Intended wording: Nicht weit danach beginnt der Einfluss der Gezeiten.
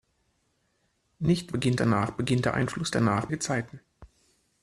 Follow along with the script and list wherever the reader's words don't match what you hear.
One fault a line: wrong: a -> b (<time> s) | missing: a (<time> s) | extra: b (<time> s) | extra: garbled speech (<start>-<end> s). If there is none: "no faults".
wrong: weit -> beginnt (1.5 s)
wrong: der -> danach (2.9 s)